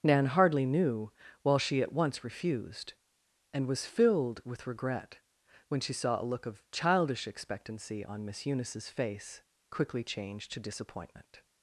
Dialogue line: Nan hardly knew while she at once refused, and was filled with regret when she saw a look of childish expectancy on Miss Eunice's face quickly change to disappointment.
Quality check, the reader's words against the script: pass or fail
pass